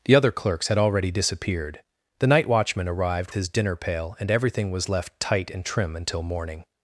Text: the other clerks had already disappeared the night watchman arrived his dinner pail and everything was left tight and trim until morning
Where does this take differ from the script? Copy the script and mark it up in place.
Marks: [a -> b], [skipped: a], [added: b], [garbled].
the other clerks had already disappeared the night watchman arrived his dinner pail and everything was left tight and trim until morning